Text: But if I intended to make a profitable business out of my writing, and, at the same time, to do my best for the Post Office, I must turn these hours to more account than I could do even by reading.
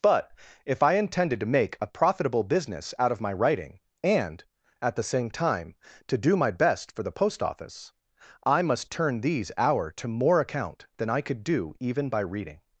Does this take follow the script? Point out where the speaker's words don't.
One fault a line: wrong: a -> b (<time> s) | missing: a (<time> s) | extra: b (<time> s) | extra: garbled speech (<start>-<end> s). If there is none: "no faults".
wrong: hours -> hour (9.6 s)